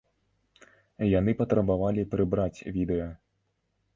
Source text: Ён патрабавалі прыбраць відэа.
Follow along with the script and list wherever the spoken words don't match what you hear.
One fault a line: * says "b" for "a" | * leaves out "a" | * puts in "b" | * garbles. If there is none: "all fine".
* says "Яны" for "Ён"